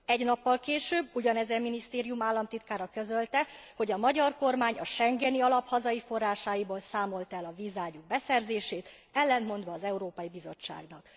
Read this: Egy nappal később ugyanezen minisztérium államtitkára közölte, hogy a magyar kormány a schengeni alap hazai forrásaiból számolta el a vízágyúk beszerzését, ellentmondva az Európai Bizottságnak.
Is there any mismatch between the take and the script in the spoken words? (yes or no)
no